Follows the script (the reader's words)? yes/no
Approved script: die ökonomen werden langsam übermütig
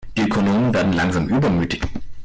yes